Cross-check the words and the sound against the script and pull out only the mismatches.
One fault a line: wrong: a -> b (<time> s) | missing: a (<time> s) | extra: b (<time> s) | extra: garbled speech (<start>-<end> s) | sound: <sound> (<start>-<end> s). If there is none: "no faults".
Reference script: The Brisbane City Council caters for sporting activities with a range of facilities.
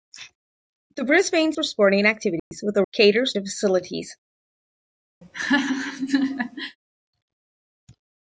missing: City Council caters (1.5 s)
sound: dropout (2.4-2.5 s)
wrong: range -> caters (2.9 s)
sound: laugh (5.2-6.8 s)